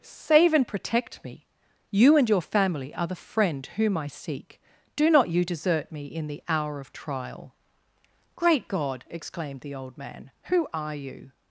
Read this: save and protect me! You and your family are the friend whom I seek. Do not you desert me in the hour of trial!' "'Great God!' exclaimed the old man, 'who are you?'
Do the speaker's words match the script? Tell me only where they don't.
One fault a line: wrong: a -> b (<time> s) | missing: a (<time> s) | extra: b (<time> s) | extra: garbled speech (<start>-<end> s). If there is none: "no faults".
no faults